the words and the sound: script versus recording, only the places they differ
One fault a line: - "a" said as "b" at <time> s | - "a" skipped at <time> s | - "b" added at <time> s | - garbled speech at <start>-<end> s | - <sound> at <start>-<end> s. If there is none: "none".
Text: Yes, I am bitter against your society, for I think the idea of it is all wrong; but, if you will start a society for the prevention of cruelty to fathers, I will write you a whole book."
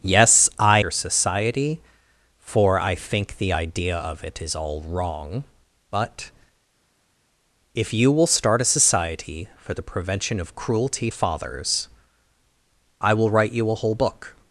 - "am bitter against" skipped at 0.8 s
- "to" skipped at 11.1 s